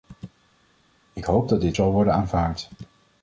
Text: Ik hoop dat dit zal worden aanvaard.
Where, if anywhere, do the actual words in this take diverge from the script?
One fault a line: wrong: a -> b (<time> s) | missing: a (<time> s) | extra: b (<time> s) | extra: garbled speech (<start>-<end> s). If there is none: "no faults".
no faults